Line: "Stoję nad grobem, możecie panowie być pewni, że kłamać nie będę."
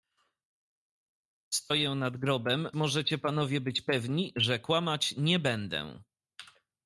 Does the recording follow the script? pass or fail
pass